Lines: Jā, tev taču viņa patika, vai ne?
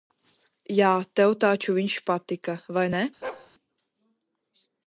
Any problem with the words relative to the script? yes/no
yes